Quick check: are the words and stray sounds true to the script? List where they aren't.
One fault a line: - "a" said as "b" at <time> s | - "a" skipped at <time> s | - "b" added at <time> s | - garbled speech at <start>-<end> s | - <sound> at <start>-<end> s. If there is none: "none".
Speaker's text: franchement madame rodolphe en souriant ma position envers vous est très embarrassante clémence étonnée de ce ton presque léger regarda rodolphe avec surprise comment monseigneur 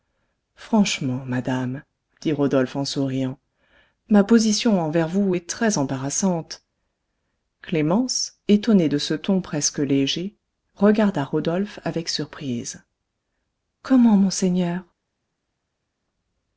- "dit" added at 2.2 s